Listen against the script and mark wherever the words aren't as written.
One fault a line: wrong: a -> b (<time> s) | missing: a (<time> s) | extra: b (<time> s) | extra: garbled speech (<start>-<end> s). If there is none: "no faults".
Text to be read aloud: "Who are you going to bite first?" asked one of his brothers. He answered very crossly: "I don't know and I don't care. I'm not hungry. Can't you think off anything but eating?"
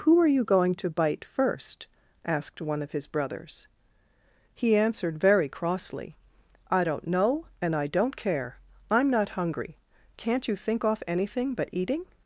no faults